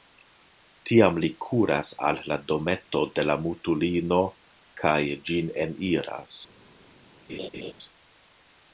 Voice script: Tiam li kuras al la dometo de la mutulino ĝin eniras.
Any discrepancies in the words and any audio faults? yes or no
yes